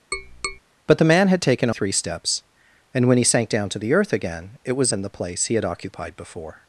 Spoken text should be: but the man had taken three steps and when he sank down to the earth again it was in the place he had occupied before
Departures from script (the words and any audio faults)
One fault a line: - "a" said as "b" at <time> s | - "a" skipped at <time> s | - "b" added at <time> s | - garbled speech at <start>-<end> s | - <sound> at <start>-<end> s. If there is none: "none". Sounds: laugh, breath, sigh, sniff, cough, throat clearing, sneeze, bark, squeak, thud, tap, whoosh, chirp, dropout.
- tap at 0.1-0.6 s